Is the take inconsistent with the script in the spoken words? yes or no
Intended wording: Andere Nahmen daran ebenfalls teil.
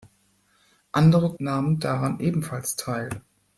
no